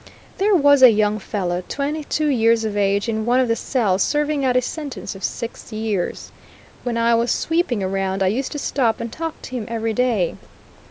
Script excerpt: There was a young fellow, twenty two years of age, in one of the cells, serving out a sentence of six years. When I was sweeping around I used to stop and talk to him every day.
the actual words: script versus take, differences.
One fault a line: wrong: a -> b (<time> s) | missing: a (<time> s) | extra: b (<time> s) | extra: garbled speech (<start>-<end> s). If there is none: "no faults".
no faults